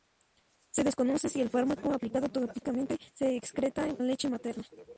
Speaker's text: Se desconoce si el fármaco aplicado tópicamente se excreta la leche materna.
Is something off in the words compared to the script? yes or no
no